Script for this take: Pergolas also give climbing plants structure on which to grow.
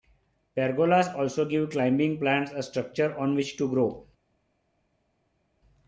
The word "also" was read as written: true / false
true